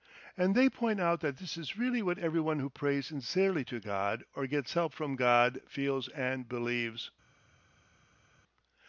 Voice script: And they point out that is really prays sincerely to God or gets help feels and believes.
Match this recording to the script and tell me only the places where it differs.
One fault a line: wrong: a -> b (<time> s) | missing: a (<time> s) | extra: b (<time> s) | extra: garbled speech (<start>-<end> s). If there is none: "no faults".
extra: this (1.4 s)
extra: what everyone who (2.0 s)
extra: from God (4.9 s)